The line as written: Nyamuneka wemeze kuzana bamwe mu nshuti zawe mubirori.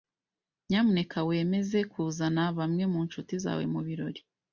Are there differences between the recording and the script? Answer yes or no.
no